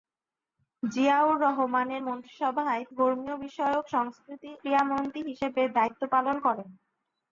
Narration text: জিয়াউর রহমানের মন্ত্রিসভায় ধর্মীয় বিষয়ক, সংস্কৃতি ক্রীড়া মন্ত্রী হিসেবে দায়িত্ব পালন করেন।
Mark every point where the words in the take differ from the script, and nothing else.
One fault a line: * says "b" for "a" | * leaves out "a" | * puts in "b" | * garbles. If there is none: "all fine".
all fine